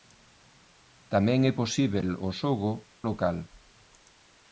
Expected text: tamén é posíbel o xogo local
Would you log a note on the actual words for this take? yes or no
no